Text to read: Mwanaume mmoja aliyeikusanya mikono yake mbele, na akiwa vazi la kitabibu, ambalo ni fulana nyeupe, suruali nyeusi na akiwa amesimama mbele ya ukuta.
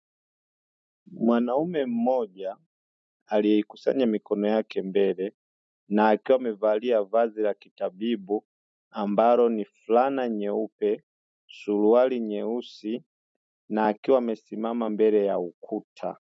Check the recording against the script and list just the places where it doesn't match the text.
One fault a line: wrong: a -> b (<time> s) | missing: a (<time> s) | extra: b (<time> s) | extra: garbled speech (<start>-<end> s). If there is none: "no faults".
extra: amevalia (6.4 s)